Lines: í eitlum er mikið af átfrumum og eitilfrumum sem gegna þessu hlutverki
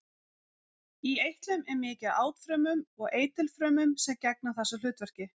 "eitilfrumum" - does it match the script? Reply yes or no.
yes